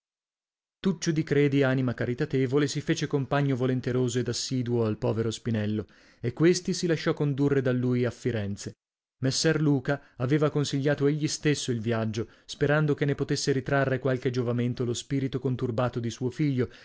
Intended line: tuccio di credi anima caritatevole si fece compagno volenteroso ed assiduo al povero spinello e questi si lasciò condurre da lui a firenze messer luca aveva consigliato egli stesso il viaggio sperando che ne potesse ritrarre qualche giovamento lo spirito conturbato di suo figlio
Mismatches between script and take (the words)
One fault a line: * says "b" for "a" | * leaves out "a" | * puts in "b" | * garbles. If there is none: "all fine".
all fine